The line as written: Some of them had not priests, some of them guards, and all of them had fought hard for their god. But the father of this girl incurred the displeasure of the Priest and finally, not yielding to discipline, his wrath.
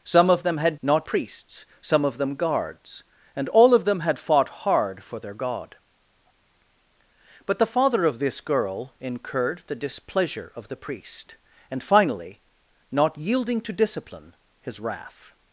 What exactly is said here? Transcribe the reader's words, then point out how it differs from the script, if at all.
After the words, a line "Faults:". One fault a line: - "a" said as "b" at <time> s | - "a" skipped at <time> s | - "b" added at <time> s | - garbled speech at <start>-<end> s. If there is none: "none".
Some of them had not priests, some of them guards, and all of them had fought hard for their god. But the father of this girl incurred the displeasure of the Priest and finally, not yielding to discipline, his wrath.
Faults:
none